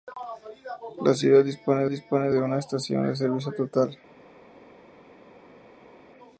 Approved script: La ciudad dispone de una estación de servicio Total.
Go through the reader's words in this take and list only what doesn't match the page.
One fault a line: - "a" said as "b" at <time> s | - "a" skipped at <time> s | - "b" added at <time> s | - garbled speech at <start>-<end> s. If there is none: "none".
- "dispone" added at 1.9 s